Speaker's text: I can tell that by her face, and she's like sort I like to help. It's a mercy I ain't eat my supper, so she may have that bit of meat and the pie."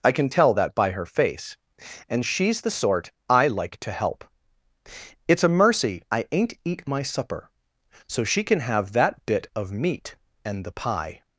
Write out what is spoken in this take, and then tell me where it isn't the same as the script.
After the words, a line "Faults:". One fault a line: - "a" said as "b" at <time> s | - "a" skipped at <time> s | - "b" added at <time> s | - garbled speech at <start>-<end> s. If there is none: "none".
I can tell that by her face, and she's the sort I like to help. It's a mercy I ain't eat my supper, so she can have that bit of meat and the pie."
Faults:
- "like" said as "the" at 2.6 s
- "may" said as "can" at 8.5 s